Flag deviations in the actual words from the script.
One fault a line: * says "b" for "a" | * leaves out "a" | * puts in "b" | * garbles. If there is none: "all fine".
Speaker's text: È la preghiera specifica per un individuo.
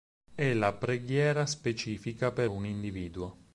all fine